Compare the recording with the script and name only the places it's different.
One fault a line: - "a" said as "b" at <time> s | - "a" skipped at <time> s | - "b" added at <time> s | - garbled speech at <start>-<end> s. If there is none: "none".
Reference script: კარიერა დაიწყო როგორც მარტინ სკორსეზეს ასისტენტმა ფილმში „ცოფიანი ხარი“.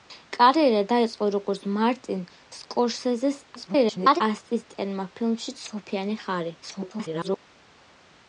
- garbled speech at 3.6-4.2 s
- garbled speech at 6.6-7.4 s